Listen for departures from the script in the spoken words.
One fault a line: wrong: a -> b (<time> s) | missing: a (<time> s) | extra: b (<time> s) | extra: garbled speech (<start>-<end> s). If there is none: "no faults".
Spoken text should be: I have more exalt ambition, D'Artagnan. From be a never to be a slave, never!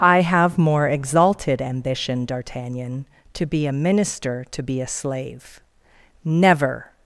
wrong: exalt -> exalted (0.9 s)
wrong: From -> To (3.4 s)
wrong: never -> minister (3.7 s)